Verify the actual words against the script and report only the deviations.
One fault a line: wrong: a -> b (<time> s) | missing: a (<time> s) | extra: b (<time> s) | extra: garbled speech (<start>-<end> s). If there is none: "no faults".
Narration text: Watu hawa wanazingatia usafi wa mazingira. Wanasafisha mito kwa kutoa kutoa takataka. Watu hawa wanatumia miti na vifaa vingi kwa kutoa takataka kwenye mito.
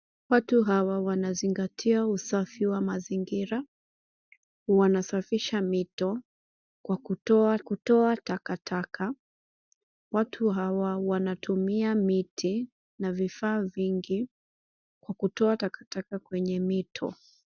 no faults